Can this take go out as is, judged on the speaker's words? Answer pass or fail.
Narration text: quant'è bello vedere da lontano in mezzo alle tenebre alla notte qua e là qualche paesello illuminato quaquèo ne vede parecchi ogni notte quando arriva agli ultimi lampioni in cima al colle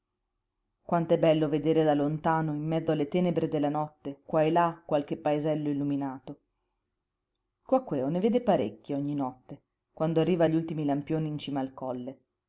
fail